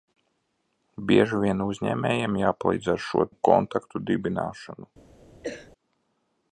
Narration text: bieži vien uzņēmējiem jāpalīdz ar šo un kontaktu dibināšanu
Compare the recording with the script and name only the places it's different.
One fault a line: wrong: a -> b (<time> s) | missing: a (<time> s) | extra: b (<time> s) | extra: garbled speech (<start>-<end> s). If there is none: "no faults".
no faults